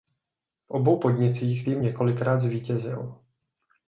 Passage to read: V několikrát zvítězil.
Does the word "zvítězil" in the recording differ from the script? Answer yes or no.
no